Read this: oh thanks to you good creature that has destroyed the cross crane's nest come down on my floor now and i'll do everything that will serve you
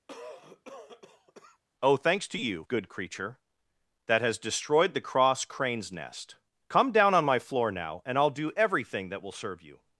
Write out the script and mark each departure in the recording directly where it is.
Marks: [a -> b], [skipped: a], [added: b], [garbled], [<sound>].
[cough] oh thanks to you good creature that has destroyed the cross crane's nest come down on my floor now and i'll do everything that will serve you